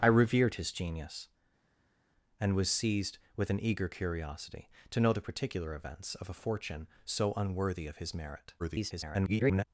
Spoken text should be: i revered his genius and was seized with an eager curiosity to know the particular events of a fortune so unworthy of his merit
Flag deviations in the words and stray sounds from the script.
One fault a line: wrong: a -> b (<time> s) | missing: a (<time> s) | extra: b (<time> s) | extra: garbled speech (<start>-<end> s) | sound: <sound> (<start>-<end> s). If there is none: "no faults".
extra: garbled speech (8.6-9.7 s)